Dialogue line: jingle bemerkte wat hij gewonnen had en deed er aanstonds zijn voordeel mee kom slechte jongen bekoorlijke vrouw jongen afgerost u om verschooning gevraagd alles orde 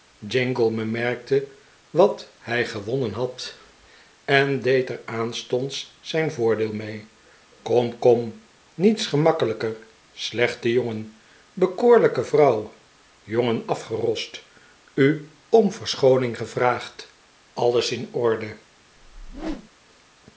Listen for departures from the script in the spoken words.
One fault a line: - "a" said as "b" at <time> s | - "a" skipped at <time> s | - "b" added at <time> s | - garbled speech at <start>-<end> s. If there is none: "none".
- "kom niets gemakkelijker" added at 8.0 s
- "in" added at 17.9 s